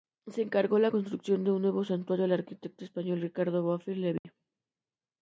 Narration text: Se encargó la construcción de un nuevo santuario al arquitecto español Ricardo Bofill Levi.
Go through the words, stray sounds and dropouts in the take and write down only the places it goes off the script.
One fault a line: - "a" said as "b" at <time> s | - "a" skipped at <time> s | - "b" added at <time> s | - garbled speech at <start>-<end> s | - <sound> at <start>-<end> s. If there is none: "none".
- dropout at 4.2-4.2 s